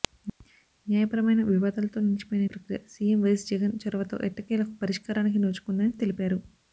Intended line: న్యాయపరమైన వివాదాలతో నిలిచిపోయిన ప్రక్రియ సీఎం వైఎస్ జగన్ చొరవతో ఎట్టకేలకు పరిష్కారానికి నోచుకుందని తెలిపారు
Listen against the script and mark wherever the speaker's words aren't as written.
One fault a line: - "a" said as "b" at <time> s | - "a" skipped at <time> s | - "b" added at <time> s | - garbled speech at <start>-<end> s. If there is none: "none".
none